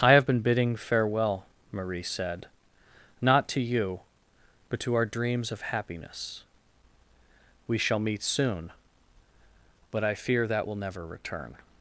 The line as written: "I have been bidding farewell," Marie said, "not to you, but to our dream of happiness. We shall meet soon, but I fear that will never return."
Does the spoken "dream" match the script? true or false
false